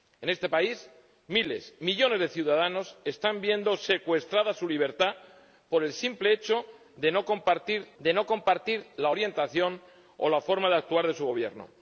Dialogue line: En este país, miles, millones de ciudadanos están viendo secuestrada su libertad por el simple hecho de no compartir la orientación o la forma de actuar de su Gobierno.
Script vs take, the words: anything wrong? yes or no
yes